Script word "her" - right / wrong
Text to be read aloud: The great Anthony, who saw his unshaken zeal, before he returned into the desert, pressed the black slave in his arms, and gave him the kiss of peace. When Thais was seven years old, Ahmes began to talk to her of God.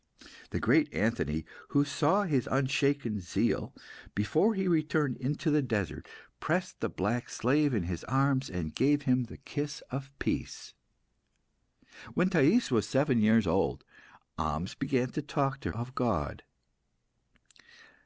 wrong